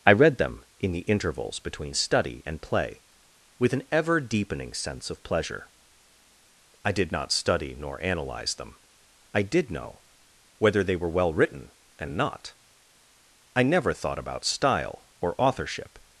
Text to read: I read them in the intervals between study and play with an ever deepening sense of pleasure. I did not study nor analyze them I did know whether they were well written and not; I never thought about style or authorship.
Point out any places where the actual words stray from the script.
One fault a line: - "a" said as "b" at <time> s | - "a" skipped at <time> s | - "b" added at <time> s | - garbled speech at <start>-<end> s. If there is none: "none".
none